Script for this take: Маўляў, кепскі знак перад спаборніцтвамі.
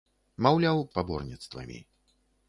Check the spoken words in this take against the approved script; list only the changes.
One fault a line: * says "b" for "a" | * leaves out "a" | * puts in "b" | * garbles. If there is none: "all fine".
* leaves out "кепскі знак перад"